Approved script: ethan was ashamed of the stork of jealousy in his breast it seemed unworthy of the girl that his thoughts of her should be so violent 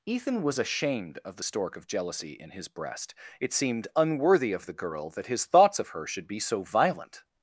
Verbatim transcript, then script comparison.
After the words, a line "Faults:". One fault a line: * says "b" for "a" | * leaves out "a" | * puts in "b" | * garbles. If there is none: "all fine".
ethan was ashamed of the stork of jealousy in his breast it seemed unworthy of the girl that his thoughts of her should be so violent
Faults:
all fine